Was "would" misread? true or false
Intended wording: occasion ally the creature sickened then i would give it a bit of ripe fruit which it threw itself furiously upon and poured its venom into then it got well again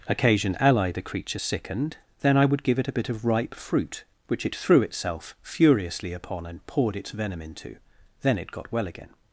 false